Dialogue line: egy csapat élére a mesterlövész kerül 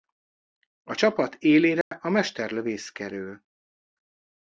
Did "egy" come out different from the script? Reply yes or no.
yes